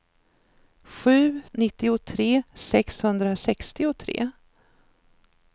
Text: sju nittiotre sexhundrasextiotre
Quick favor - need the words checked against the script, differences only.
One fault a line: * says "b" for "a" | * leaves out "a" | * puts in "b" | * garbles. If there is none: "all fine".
all fine